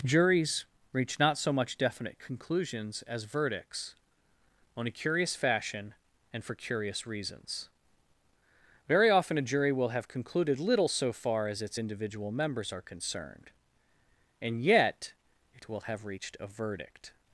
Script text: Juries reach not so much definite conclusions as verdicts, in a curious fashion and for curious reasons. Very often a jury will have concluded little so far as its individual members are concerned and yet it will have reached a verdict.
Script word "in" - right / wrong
wrong